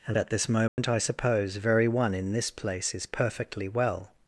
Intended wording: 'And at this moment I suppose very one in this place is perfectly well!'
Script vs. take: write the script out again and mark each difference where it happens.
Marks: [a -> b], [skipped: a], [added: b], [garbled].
'And at this moment I suppose very one in this place is perfectly well!'